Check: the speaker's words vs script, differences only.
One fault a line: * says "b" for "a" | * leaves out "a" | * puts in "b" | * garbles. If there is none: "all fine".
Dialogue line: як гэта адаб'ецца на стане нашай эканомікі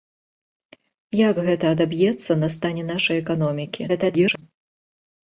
* garbles